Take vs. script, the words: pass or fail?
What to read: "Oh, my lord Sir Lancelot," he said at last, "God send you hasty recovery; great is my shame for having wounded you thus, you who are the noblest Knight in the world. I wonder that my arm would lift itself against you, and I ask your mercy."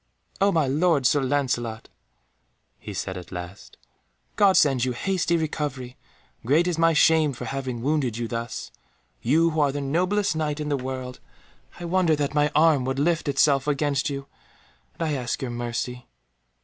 pass